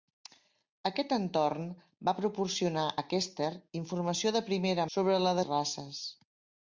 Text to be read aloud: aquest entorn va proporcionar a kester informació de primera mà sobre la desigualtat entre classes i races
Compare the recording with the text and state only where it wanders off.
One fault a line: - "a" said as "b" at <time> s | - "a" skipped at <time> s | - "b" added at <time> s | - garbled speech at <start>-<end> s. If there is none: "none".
- "mà" skipped at 4.9 s
- "desigualtat entre classes" skipped at 5.4 s